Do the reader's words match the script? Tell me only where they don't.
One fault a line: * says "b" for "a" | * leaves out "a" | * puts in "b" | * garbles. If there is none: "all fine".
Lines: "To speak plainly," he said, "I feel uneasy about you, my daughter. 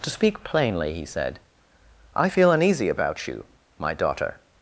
all fine